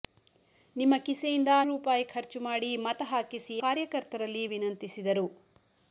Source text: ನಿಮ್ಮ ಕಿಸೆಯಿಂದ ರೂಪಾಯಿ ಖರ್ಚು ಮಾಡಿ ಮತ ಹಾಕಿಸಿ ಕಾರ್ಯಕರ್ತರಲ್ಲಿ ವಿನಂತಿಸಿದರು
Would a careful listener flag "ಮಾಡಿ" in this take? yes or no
no